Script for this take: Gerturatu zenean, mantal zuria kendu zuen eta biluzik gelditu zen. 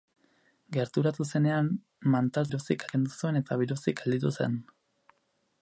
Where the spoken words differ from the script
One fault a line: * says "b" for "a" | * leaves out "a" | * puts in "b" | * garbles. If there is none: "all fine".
* says "biluzik" for "zuria"